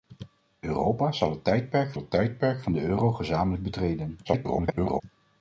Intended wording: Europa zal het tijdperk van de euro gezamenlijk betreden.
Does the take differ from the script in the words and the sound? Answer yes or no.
yes